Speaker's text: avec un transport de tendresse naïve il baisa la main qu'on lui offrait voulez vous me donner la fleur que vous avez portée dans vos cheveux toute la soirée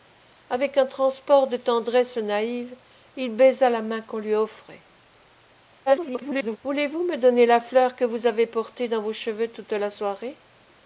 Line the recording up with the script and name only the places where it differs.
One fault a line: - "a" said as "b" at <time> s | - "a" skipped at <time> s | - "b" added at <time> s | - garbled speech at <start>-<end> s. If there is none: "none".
- garbled speech at 5.9-6.6 s